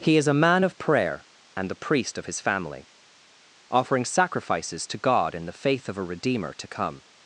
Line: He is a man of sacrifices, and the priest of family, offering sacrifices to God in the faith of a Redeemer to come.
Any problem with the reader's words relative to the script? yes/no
yes